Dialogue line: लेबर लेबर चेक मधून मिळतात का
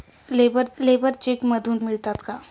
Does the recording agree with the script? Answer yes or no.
yes